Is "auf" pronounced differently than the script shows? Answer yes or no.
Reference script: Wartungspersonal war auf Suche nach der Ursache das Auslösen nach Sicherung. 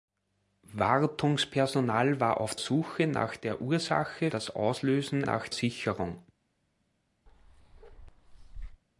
no